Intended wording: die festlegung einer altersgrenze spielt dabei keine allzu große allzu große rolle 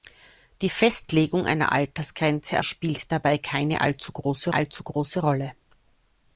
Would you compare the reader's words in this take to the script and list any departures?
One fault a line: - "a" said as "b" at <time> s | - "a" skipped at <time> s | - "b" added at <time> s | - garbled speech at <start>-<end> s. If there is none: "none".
none